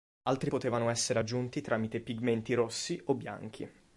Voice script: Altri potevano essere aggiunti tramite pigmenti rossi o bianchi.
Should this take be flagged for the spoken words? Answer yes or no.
no